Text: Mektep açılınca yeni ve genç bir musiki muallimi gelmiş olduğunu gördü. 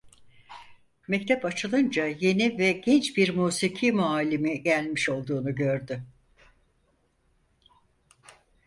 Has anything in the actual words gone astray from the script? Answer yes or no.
no